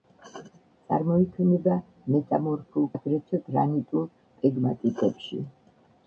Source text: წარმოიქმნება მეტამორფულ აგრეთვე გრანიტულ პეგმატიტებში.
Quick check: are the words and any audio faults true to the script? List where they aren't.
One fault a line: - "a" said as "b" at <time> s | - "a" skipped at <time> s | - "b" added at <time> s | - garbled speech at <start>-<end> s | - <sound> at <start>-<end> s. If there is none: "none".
none